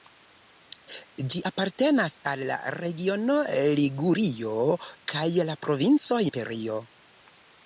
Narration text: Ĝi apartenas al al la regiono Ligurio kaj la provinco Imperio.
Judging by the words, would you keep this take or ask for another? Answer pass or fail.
fail